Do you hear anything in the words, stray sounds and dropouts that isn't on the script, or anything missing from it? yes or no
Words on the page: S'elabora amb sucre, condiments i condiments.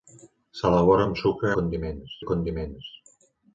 no